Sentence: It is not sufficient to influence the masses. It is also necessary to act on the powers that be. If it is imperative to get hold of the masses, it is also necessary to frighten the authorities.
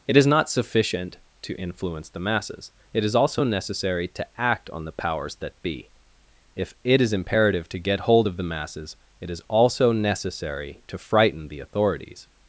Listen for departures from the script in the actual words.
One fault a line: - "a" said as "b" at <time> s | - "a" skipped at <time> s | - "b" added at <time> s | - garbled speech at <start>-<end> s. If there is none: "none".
none